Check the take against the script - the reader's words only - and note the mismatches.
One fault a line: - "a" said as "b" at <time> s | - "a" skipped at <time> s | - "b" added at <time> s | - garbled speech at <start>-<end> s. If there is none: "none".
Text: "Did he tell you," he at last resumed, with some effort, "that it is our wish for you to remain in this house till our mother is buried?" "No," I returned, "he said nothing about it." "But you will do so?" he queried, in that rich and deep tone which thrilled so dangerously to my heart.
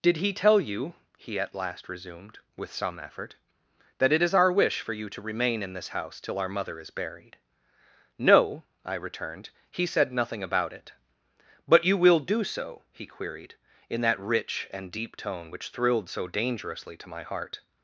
none